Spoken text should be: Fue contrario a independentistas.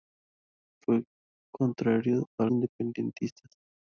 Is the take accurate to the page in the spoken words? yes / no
yes